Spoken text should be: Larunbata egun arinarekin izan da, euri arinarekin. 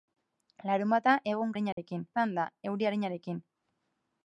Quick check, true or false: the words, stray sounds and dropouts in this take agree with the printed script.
false